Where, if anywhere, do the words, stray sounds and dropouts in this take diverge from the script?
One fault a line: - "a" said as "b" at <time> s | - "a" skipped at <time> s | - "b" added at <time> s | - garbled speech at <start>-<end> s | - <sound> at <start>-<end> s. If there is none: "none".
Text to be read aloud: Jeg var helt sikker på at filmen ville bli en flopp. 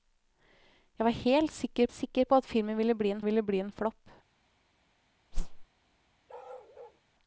- "sikker" added at 1.9 s
- "ville bli en" added at 3.2 s
- whoosh at 5.3-5.7 s
- bark at 6.3-7.0 s